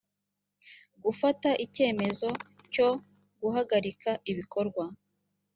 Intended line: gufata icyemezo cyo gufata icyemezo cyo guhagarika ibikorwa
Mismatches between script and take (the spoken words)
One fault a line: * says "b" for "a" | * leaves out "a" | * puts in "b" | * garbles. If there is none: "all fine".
* leaves out "gufata icyemezo cyo"